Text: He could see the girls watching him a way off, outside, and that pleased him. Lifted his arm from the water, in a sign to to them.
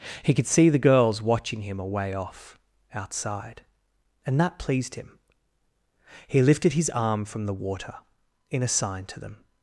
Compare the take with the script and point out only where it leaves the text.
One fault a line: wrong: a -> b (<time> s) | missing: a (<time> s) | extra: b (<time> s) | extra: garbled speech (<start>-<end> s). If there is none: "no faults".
extra: He (6.3 s)
missing: to (9.2 s)